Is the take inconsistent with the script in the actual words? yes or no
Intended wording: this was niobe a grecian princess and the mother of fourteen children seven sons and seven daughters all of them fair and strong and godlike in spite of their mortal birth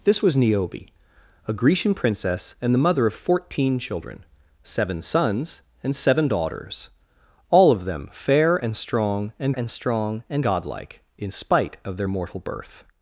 yes